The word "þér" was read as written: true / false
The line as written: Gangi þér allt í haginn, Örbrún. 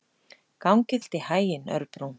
false